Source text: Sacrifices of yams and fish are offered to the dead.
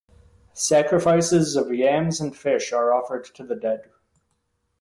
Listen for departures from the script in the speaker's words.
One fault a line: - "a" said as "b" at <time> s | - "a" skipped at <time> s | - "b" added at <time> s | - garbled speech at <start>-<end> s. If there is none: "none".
none